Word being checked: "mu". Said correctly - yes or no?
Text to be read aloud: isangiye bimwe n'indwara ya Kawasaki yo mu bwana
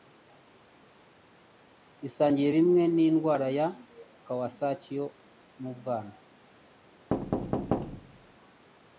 yes